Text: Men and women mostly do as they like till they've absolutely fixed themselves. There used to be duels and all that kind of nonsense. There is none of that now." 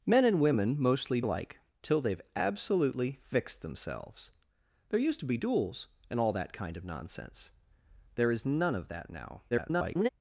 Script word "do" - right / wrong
wrong